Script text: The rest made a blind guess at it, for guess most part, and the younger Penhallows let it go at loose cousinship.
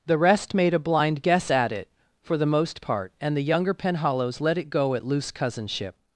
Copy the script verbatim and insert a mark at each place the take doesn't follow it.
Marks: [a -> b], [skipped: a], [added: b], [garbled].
The rest made a blind guess at it, for [guess -> the] most part, and the younger Penhallows let it go at loose cousinship.